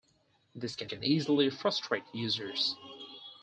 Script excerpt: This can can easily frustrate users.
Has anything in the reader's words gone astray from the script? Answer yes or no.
no